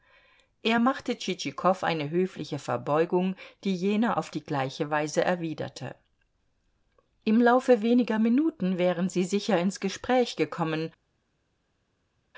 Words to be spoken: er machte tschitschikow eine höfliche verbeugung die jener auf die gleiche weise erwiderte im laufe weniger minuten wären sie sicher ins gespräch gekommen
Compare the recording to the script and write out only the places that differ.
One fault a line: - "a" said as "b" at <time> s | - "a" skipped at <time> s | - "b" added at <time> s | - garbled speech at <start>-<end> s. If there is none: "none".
none